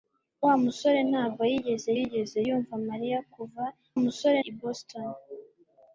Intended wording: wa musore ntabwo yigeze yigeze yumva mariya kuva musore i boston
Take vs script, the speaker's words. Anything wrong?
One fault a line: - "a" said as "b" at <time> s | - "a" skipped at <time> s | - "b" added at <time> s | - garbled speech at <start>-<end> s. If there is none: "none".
none